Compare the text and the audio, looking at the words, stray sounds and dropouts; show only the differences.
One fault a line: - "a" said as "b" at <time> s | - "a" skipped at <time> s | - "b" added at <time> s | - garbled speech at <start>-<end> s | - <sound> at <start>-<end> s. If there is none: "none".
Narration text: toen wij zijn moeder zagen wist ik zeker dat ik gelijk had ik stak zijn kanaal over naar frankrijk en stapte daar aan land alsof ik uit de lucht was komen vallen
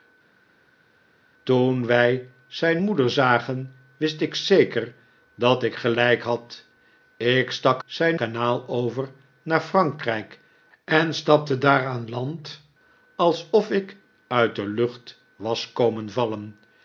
none